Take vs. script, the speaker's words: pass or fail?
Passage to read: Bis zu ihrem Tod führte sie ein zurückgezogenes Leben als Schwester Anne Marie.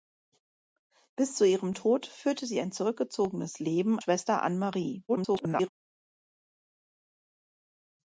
fail